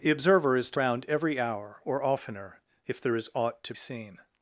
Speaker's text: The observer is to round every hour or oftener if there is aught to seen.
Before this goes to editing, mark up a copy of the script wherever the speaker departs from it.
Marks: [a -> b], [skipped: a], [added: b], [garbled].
The observer is to round every hour or oftener if there is aught to seen.